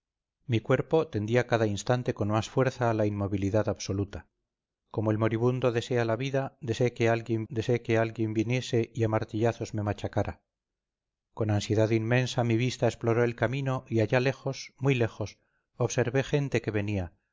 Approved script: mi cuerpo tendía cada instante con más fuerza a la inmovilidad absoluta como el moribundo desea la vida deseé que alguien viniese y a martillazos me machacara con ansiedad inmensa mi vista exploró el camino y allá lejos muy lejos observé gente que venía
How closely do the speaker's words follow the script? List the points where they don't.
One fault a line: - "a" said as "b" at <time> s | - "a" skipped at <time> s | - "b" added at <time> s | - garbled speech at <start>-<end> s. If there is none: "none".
- "deseé que alguien" added at 7.5 s